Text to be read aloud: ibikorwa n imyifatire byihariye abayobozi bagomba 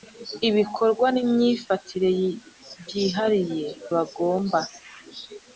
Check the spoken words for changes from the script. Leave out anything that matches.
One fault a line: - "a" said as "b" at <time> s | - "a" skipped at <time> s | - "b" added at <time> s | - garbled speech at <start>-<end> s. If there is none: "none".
- "abayobozi" skipped at 3.7 s